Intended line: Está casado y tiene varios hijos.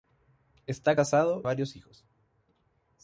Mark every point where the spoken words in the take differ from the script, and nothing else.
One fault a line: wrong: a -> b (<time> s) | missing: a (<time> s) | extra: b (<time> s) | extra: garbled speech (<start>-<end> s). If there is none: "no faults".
missing: y tiene (1.4 s)